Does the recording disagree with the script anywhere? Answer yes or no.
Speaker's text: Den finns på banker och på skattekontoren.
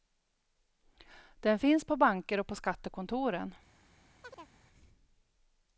no